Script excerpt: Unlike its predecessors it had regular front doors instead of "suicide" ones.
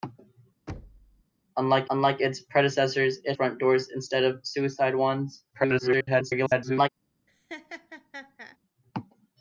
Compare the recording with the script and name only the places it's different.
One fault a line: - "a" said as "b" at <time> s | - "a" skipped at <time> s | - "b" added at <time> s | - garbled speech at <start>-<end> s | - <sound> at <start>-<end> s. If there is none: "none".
- thud at 0.7-1.2 s
- "unlike" added at 1.9 s
- "had regular" skipped at 3.4 s
- garbled speech at 5.5-6.9 s
- laugh at 7.3-8.6 s